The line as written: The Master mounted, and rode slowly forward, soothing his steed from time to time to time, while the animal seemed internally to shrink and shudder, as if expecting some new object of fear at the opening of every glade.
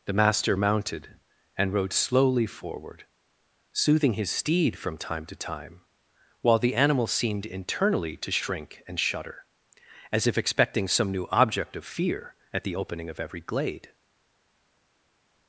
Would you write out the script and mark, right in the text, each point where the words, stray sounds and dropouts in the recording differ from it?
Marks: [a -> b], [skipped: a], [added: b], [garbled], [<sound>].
The Master mounted, and rode slowly forward, soothing his steed from time to time [skipped: to time,] while the animal seemed internally to shrink and shudder, as if expecting some new object of fear at the opening of every glade.